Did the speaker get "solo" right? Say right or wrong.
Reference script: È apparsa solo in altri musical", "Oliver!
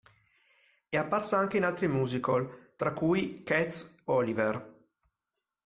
wrong